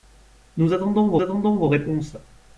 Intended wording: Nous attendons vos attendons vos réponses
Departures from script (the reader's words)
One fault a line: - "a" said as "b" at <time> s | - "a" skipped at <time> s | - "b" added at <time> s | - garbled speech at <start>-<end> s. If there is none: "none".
none